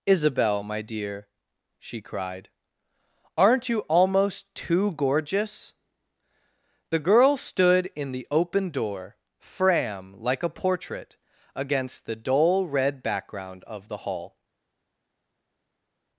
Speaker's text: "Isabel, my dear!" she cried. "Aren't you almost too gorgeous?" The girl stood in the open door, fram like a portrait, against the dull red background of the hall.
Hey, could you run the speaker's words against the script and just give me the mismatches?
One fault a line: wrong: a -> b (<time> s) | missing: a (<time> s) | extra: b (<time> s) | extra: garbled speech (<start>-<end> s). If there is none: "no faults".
no faults